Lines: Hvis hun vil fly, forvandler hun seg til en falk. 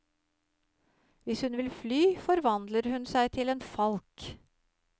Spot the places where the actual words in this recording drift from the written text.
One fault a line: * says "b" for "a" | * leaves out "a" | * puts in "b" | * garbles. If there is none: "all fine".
all fine